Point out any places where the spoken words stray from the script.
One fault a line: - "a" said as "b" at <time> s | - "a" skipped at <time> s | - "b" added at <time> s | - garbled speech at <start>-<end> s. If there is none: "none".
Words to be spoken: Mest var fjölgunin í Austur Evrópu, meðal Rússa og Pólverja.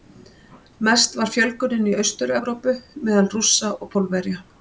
none